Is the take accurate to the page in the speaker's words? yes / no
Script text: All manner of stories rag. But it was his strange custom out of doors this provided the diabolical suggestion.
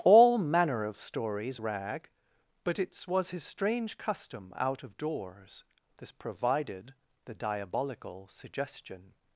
yes